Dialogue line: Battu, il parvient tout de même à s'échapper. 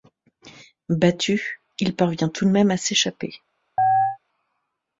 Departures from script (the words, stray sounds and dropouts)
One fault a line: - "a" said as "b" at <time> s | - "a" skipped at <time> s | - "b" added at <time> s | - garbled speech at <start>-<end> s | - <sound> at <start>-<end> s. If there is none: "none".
- chirp at 3.8-4.2 s